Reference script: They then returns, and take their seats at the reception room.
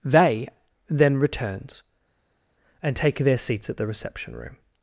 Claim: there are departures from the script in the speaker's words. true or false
false